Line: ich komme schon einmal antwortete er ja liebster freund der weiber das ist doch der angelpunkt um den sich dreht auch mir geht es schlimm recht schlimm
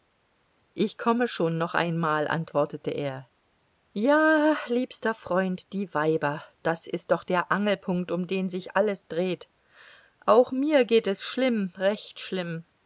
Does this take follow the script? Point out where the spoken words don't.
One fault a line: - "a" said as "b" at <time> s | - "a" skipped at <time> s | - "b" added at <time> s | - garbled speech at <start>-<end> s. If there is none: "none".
- "noch" added at 1.6 s
- "der" said as "die" at 5.7 s
- "alles" added at 8.8 s